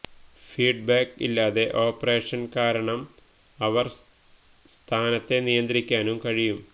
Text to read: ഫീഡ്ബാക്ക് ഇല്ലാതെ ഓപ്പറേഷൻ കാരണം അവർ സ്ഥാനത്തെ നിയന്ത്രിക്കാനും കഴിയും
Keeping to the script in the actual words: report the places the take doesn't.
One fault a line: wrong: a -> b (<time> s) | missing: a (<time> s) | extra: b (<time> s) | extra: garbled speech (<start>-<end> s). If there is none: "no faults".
no faults